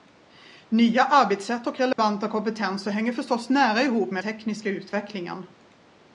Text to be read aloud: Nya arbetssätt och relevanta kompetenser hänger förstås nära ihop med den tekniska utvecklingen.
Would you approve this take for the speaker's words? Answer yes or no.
no